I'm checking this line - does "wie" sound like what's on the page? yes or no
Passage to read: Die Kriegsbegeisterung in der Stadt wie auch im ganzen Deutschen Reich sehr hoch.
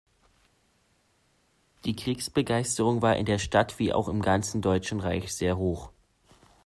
yes